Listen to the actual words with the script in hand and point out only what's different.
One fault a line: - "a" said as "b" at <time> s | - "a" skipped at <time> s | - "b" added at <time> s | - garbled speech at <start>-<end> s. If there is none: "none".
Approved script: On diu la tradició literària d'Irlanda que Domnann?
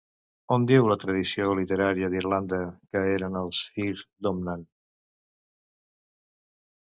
- "eren els Fir" added at 3.2 s